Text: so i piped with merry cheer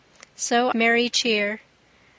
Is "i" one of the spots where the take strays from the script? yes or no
yes